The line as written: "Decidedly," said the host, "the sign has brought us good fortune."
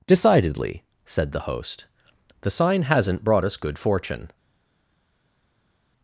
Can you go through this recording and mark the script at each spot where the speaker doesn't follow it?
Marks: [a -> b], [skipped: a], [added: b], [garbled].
"Decidedly," said the host, "the sign [has -> hasn't] brought us good fortune."